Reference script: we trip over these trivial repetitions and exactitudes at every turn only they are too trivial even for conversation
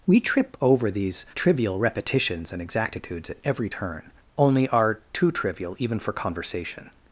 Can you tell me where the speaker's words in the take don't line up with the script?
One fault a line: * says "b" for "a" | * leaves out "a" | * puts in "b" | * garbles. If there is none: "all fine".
* leaves out "they"